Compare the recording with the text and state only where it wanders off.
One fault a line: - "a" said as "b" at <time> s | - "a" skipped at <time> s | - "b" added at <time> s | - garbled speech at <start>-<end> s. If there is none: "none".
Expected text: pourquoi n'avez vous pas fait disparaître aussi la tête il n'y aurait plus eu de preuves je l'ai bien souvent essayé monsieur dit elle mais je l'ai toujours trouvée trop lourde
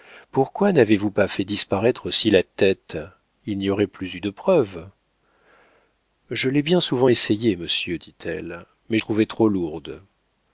- "je l'ai toujours" skipped at 9.0 s